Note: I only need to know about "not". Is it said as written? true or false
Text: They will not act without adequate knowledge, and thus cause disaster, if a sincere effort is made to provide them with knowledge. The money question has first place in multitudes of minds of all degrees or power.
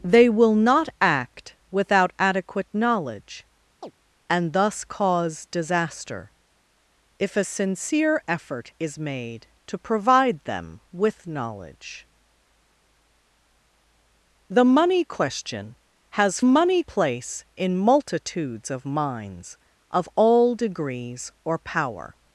true